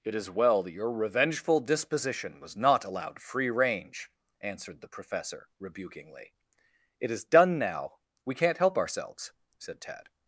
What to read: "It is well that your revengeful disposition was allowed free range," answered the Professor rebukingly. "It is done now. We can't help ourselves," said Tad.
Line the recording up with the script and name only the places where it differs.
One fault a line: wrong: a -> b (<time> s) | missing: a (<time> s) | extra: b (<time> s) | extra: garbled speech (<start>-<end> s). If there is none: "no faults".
extra: not (2.6 s)